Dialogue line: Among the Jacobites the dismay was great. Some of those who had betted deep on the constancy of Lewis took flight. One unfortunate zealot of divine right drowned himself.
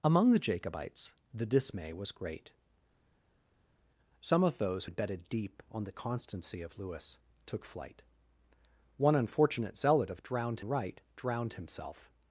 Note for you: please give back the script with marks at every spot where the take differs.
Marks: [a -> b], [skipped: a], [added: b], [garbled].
Among the Jacobites the dismay was great. Some of those [skipped: who] had betted deep on the constancy of Lewis took flight. One unfortunate zealot of [divine -> drowned] right drowned himself.